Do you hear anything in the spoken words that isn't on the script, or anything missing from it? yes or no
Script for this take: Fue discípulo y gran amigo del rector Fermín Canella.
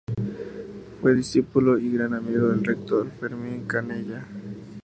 no